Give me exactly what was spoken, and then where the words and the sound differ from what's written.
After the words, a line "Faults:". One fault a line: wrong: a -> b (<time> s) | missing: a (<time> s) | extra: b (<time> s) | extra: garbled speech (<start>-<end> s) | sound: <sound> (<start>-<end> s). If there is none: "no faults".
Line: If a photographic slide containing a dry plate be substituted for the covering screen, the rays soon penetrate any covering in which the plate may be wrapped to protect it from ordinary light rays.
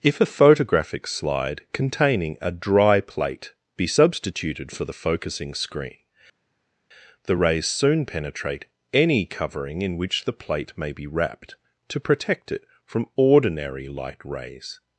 If a photographic slide containing a dry plate be substituted for the focusing screen, the rays soon penetrate any covering in which the plate may be wrapped to protect it from ordinary light rays.
Faults:
wrong: covering -> focusing (5.0 s)